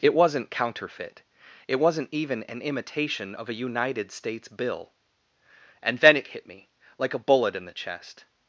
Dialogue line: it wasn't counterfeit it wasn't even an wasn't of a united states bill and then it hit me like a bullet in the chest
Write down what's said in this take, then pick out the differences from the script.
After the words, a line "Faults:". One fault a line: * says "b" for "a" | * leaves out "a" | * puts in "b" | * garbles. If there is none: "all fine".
it wasn't counterfeit it wasn't even an imitation of a united states bill and then it hit me like a bullet in the chest
Faults:
* says "imitation" for "wasn't"